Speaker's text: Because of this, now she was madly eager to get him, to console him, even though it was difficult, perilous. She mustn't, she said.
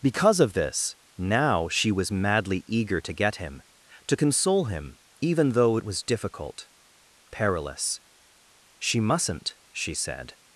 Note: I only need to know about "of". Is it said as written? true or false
true